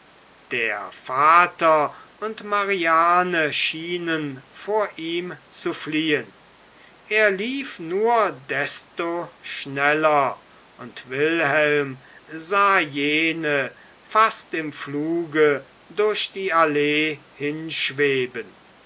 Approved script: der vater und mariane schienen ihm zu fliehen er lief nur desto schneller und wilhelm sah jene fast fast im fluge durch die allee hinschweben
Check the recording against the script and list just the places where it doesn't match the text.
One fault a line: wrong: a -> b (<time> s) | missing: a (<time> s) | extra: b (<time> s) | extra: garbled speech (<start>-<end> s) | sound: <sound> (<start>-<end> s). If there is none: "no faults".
extra: vor (4.5 s)
missing: fast (14.5 s)